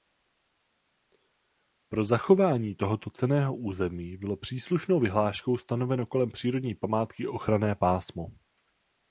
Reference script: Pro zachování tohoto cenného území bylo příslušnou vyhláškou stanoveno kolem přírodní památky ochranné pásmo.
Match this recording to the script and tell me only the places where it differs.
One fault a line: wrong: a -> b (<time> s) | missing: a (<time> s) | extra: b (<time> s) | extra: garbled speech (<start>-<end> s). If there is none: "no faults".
no faults